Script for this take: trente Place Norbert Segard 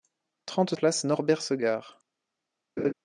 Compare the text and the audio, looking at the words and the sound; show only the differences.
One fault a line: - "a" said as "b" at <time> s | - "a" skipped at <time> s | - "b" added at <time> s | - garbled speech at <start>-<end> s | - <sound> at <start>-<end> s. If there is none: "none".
- laugh at 2.8-2.9 s